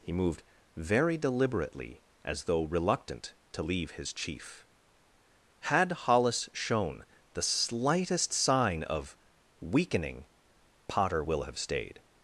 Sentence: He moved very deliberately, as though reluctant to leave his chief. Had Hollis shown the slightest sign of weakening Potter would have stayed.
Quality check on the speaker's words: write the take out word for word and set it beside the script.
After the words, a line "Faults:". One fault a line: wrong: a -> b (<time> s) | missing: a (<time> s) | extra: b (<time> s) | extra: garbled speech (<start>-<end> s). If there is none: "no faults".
He moved very deliberately, as though reluctant to leave his chief. Had Hollis shown the slightest sign of weakening Potter will have stayed.
Faults:
wrong: would -> will (11.2 s)